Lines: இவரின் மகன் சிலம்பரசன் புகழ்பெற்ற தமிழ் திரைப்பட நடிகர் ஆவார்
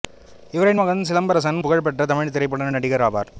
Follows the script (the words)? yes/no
yes